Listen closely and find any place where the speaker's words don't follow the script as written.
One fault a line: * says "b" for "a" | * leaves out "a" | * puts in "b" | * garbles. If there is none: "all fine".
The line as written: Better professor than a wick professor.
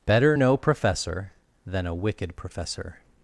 * puts in "no"
* says "wicked" for "wick"